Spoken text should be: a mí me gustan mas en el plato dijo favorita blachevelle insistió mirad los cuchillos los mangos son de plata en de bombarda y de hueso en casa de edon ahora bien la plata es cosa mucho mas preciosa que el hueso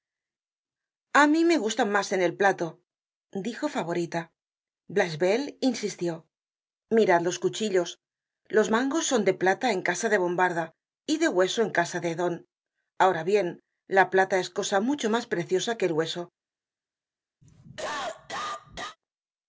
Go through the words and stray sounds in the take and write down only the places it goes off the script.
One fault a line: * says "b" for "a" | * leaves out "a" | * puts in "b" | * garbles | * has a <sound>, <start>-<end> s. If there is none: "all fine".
* puts in "casa"
* has a cough, 17.4-19.0 s